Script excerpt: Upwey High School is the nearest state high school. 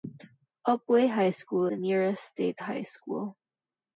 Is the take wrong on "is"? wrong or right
wrong